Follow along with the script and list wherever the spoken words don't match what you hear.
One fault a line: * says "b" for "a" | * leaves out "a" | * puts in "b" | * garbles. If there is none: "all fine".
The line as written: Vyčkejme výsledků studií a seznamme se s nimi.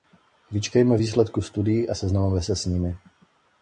all fine